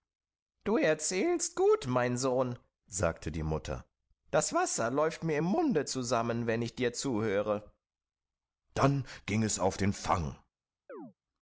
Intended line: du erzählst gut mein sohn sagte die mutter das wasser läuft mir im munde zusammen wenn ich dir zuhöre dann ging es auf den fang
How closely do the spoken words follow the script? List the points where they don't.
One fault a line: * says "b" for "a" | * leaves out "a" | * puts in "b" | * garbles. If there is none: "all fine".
all fine